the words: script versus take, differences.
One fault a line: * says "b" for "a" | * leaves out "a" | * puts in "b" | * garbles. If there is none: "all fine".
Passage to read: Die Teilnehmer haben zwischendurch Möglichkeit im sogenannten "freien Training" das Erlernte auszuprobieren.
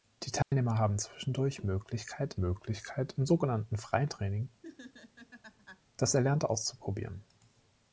* puts in "Möglichkeit"